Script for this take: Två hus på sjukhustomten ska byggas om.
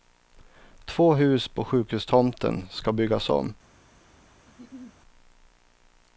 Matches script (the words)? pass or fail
pass